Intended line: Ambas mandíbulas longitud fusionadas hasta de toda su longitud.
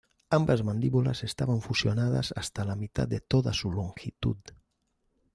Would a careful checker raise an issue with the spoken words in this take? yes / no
yes